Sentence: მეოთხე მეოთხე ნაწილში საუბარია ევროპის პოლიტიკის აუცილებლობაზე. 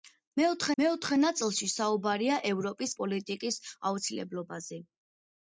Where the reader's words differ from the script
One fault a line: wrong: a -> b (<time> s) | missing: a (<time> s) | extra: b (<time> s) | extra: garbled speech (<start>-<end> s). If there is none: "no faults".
no faults